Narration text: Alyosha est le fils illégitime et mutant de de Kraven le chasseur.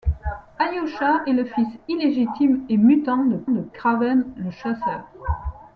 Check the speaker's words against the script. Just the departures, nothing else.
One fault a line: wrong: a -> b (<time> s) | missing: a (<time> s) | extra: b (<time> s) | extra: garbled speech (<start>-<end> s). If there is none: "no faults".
no faults